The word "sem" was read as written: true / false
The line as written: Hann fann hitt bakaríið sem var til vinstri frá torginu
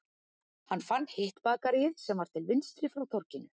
true